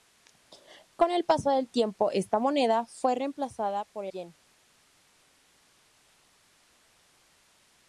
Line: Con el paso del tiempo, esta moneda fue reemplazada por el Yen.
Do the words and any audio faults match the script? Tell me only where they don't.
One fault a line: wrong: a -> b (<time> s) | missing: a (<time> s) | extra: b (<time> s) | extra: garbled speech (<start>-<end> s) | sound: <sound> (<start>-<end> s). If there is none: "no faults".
missing: el (4.1 s)